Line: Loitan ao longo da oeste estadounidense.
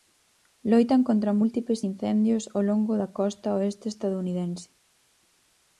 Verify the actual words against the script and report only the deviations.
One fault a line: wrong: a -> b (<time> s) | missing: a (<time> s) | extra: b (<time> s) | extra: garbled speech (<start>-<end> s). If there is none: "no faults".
extra: contra múltiples incendios (1.1 s)
extra: costa (3.2 s)